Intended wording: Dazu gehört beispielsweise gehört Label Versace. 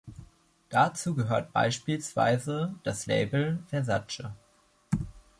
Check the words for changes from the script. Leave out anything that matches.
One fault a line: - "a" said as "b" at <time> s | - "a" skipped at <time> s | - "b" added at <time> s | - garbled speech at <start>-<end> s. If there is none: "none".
- "gehört" said as "das" at 2.8 s